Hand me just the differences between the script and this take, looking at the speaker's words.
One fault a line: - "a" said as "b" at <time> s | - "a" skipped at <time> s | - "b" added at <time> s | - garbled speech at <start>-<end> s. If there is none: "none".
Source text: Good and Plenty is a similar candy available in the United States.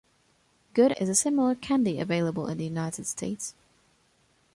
- "and Plenty" skipped at 0.9 s